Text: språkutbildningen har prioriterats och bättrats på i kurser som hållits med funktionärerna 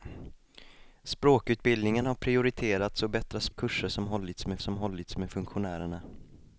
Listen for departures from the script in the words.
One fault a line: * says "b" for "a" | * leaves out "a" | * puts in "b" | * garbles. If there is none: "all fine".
* leaves out "på"
* puts in "som hållits med"